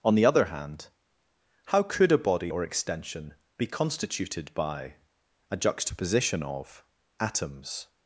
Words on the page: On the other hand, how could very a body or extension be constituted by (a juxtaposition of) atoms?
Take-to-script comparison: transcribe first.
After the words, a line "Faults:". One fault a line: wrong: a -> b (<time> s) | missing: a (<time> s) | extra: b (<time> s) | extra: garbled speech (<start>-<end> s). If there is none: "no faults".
On the other hand, how could a body or extension be constituted by (a juxtaposition of) atoms?
Faults:
missing: very (2.1 s)